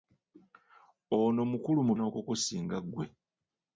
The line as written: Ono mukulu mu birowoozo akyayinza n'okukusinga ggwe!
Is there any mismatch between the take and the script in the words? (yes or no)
yes